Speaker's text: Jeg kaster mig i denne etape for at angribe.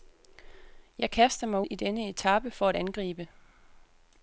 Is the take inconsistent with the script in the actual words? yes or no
no